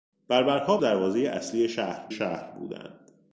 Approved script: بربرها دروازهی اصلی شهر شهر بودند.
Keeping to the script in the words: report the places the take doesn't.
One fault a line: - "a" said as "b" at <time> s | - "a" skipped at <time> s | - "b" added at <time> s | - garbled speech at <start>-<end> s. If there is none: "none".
none